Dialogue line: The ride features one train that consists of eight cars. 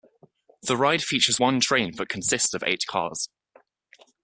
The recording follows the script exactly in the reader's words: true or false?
true